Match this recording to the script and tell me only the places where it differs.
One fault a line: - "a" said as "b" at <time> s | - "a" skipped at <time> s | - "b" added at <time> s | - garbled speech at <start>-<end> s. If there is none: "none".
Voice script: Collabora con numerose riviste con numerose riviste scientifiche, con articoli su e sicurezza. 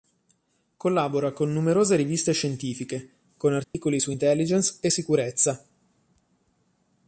- "con numerose riviste" skipped at 2.3 s
- "intelligence" added at 4.1 s